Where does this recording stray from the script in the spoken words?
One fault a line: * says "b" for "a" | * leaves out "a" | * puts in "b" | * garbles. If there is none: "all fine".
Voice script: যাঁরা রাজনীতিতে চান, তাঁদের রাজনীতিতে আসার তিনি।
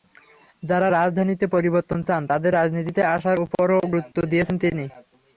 * puts in "পরিবর্তন"
* puts in "ওপরও গুরুত্ব দিয়েছেন"